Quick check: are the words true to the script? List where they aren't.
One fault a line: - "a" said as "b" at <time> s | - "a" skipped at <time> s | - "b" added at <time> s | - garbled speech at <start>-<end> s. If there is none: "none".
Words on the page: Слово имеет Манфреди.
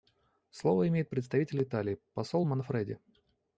- "представитель Италии посол" added at 1.1 s